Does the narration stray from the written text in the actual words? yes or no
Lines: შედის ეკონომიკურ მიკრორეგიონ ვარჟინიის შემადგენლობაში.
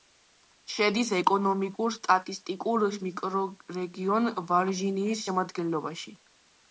yes